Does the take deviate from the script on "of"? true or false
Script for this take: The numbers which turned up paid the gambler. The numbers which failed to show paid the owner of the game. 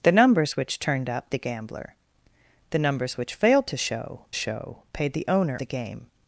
true